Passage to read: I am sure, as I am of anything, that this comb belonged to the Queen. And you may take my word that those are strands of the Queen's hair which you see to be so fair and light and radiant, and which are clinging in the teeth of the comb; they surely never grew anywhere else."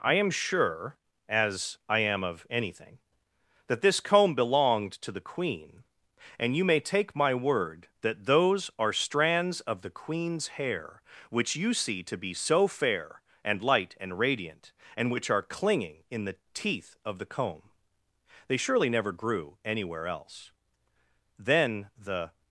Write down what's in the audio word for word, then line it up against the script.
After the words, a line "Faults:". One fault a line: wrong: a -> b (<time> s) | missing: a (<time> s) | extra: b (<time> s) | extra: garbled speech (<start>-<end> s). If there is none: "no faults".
I am sure, as I am of anything, that this comb belonged to the Queen. And you may take my word that those are strands of the Queen's hair which you see to be so fair and light and radiant, and which are clinging in the teeth of the comb; they surely never grew anywhere else." Then the
Faults:
extra: Then the (21.4 s)